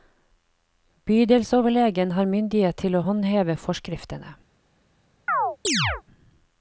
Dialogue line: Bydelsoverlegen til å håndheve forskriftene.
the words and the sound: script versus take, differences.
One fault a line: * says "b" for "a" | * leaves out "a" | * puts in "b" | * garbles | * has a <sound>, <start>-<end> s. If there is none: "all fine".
* puts in "har myndighet"
* has a chirp, 5.3-6.0 s